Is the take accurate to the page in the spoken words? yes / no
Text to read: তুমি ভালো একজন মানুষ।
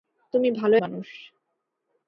no